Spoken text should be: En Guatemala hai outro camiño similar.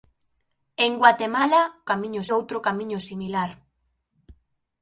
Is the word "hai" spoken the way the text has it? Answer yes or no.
no